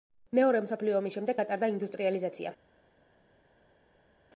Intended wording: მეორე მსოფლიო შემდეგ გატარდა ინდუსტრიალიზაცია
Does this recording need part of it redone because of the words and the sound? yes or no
yes